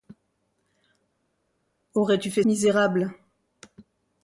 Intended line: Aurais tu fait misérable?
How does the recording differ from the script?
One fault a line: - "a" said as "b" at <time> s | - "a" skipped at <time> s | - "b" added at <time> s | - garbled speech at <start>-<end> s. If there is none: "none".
none